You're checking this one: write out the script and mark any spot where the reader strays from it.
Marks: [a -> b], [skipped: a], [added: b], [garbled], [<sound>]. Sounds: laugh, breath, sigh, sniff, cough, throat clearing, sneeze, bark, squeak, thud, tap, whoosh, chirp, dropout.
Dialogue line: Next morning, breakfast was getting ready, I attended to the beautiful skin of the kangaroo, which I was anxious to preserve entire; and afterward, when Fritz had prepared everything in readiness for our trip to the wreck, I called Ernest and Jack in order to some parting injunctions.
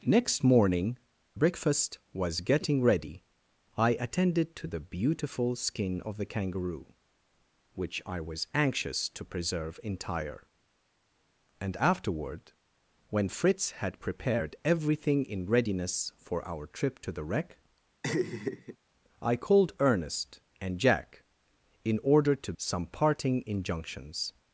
Next morning, breakfast was getting ready, I attended to the beautiful skin of the kangaroo, which I was anxious to preserve entire; and afterward, when Fritz had prepared everything in readiness for our trip to the wreck, [laugh] I called Ernest and Jack in order to some parting injunctions.